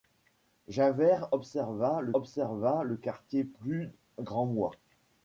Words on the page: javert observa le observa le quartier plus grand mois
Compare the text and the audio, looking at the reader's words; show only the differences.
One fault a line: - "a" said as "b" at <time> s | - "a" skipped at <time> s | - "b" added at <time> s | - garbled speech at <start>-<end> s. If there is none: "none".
none